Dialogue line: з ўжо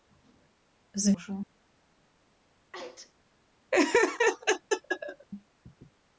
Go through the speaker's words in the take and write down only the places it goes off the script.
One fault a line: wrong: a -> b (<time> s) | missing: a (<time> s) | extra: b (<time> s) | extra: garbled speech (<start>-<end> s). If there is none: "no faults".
no faults